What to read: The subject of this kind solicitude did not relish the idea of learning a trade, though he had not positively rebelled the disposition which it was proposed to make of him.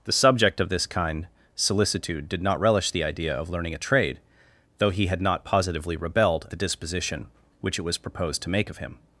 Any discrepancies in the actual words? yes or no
no